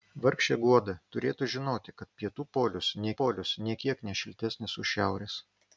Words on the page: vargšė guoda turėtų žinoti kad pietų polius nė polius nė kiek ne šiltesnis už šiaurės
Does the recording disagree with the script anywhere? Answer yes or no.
no